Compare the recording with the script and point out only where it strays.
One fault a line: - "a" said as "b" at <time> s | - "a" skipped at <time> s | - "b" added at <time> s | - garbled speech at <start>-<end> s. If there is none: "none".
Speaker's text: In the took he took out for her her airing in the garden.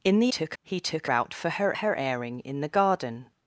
none